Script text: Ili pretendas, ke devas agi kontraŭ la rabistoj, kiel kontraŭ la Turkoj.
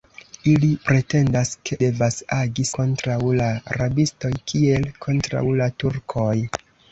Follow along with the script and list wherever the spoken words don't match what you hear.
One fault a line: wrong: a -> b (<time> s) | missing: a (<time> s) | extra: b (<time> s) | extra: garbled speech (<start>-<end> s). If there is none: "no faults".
no faults